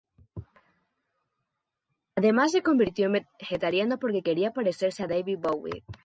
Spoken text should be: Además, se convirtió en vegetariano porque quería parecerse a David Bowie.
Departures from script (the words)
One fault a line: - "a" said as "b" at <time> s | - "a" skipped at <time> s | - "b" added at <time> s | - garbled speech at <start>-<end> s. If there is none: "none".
none